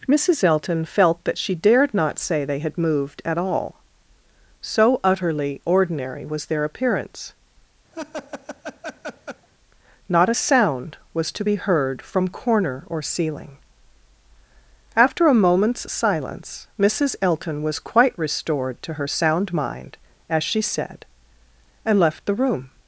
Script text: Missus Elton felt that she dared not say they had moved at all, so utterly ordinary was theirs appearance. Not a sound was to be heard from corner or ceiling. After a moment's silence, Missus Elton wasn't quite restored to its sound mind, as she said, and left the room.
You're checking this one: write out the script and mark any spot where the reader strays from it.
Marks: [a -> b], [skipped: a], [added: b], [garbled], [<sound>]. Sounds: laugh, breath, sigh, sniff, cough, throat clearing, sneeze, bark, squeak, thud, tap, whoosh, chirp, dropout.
Missus Elton felt that she dared not say they had moved at all, so utterly ordinary was [theirs -> their] appearance. [laugh] Not a sound was to be heard from corner or ceiling. After a moment's silence, Missus Elton [wasn't -> was] quite restored to [its -> her] sound mind, as she said, and left the room.